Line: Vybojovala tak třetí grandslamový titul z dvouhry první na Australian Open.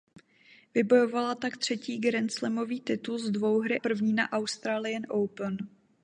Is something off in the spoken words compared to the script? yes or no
no